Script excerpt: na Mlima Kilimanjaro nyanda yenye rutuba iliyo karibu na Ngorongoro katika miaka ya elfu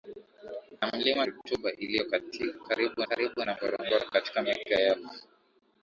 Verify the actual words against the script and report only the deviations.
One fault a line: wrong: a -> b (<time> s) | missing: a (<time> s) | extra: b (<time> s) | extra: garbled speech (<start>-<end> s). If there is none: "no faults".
missing: Kilimanjaro nyanda yenye (1.2 s)
extra: karibu (3.1 s)